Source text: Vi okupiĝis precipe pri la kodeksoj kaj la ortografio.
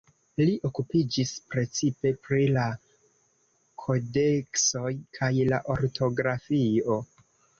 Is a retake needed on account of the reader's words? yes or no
yes